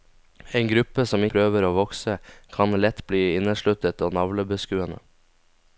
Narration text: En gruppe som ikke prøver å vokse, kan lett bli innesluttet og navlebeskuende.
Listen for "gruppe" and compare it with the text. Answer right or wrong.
right